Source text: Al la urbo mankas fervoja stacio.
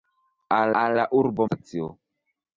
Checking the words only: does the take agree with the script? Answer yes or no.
no